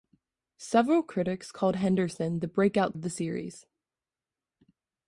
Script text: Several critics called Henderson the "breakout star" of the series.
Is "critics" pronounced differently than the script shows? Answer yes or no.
no